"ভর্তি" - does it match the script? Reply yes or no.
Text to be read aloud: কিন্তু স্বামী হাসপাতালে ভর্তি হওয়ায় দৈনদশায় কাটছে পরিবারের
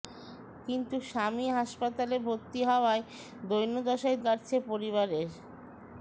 yes